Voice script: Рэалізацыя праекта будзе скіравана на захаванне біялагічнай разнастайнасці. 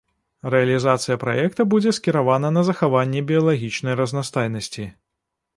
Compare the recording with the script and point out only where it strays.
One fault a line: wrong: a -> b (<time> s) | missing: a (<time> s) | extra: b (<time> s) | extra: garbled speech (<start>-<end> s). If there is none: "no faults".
no faults